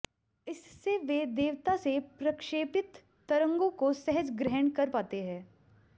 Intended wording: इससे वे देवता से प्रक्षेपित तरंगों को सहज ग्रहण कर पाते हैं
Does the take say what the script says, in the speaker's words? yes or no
yes